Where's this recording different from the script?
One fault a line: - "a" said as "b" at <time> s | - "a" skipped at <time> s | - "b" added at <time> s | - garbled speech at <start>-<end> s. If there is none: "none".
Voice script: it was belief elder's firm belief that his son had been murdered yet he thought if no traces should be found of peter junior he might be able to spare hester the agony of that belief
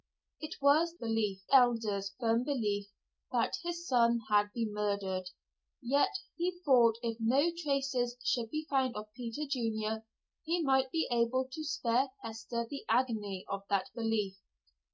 none